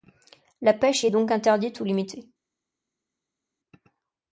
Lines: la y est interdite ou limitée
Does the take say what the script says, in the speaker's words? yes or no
no